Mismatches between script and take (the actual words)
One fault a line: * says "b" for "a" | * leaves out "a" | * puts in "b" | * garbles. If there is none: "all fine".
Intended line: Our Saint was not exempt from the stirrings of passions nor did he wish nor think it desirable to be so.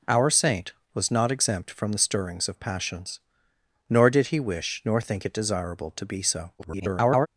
* garbles